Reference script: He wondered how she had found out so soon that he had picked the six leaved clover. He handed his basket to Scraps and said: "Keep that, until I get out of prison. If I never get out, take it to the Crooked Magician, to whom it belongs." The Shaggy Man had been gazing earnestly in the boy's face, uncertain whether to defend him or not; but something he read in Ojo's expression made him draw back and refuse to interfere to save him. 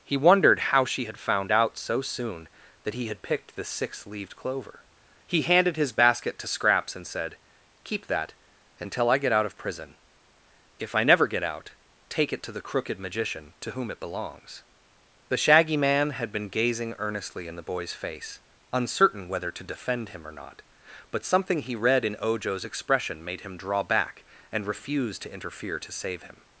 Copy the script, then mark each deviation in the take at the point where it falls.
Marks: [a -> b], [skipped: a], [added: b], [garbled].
He wondered how she had found out so soon that he had picked the six leaved clover. He handed his basket to Scraps and said: "Keep that, until I get out of prison. If I never get out, take it to the Crooked Magician, to whom it belongs." The Shaggy Man had been gazing earnestly in the boy's face, uncertain whether to defend him or not; but something he read in Ojo's expression made him draw back and refuse to interfere to save him.